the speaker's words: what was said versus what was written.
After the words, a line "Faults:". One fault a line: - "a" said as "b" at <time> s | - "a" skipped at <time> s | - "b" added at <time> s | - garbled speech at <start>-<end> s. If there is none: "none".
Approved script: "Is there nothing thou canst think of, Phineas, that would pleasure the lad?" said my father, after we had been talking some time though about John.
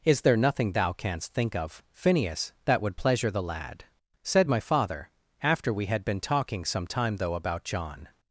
"Is there nothing thou canst think of, Phineas, that would pleasure the lad?" said my father, after we had been talking some time though about John.
Faults:
none